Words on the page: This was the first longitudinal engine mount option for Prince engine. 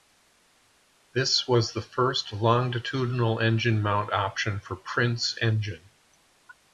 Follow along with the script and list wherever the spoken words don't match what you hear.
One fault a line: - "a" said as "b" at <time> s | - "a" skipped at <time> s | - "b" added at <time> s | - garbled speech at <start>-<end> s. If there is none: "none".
none